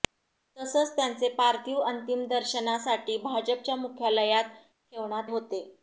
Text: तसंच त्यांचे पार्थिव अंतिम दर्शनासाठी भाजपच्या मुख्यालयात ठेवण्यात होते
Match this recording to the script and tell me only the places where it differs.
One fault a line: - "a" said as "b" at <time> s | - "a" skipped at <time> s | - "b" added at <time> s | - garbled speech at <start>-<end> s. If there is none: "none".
none